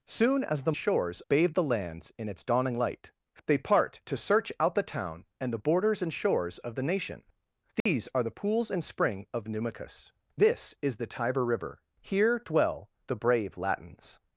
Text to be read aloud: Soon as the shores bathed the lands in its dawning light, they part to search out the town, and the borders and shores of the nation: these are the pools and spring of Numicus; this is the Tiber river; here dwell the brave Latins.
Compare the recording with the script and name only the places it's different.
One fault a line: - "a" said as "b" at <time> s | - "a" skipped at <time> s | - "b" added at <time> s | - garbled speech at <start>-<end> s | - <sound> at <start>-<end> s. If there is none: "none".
- dropout at 7.8-7.9 s